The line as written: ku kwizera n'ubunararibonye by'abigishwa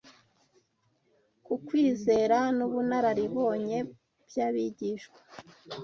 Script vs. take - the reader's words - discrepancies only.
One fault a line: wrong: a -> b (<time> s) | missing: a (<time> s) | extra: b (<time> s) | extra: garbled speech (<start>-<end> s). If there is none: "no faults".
no faults